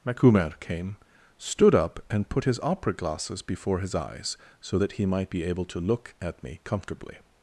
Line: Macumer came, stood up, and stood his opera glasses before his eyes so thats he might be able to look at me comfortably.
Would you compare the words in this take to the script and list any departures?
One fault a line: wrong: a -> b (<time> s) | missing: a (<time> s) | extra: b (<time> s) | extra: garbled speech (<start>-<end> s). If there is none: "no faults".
wrong: stood -> put (2.3 s)
wrong: thats -> that (4.8 s)